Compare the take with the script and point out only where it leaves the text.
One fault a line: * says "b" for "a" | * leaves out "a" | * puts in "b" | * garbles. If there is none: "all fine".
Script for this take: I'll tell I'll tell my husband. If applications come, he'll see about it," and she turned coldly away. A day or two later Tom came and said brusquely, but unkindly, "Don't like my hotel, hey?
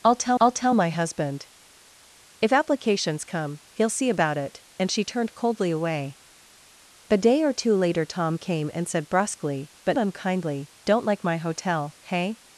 all fine